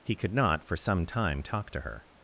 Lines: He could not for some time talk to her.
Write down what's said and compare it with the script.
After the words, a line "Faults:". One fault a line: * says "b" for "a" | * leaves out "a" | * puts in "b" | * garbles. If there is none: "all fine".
He could not for some time talk to her.
Faults:
all fine